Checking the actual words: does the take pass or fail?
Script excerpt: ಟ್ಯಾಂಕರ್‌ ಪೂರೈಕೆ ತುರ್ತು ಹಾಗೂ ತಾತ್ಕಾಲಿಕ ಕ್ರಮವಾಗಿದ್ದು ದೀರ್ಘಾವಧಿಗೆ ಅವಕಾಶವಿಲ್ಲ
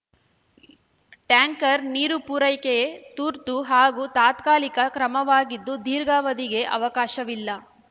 fail